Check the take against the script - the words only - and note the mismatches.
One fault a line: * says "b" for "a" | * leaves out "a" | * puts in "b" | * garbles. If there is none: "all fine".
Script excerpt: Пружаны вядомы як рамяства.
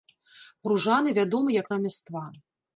all fine